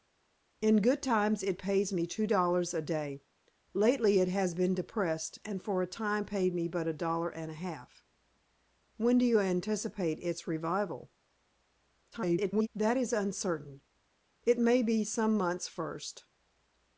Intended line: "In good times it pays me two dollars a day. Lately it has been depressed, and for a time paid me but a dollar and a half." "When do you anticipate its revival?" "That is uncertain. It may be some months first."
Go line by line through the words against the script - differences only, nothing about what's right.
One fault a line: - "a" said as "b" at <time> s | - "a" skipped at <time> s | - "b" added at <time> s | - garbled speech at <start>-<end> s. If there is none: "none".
- garbled speech at 12.1-12.7 s